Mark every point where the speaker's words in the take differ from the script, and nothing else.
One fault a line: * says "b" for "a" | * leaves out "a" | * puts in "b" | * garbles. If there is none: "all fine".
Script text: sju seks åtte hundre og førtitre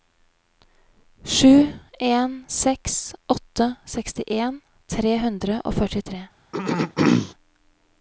* puts in "en"
* puts in "sekstien tre"